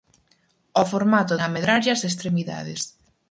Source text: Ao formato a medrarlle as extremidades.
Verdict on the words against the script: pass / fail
pass